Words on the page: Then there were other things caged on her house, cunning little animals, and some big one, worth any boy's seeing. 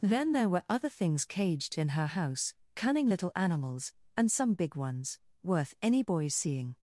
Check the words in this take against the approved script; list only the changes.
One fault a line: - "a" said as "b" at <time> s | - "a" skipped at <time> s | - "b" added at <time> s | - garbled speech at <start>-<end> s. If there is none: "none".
- "on" said as "in" at 1.8 s
- "one" said as "ones" at 4.8 s